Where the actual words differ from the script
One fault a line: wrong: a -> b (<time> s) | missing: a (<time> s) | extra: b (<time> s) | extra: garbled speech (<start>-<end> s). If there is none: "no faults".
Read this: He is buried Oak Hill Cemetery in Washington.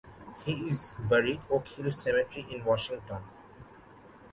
no faults